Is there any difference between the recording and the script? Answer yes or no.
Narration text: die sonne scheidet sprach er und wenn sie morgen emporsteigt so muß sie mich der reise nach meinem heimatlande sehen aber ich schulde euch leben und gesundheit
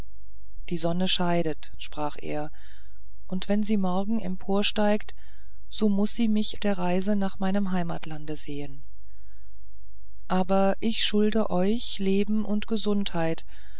no